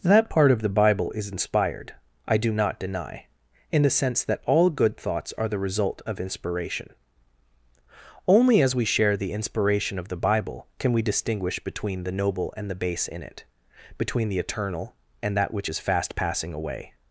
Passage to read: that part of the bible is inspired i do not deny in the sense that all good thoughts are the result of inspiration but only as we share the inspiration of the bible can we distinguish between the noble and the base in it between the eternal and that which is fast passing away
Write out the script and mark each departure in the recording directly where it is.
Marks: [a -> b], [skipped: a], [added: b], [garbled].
that part of the bible is inspired i do not deny in the sense that all good thoughts are the result of inspiration [skipped: but] only as we share the inspiration of the bible can we distinguish between the noble and the base in it between the eternal and that which is fast passing away